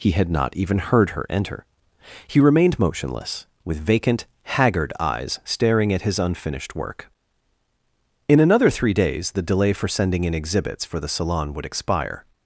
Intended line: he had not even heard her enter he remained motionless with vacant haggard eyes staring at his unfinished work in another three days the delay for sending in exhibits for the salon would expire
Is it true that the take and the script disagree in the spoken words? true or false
false